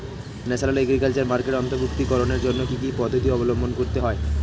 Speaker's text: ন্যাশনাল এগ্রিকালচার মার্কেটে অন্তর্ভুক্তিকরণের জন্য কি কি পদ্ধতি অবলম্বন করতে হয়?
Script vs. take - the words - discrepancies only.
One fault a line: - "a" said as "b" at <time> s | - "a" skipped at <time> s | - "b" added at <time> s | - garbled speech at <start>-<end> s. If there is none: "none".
none